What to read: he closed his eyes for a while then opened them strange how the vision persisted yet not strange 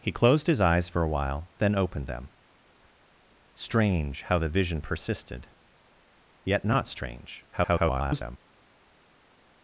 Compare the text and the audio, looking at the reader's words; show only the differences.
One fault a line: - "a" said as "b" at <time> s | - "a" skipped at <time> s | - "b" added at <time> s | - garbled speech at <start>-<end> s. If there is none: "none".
- garbled speech at 7.5-8.4 s